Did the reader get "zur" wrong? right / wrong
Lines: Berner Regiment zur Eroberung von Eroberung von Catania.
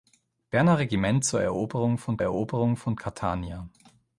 right